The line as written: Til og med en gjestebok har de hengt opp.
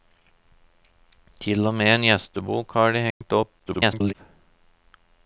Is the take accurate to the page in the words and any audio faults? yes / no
no